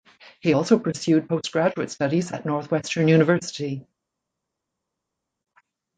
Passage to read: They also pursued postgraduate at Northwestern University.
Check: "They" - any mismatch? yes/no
yes